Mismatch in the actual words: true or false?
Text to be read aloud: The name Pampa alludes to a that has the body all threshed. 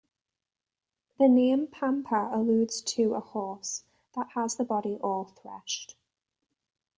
true